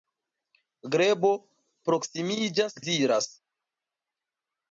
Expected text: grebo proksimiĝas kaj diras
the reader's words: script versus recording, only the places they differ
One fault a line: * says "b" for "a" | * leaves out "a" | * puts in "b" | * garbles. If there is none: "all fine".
* leaves out "kaj"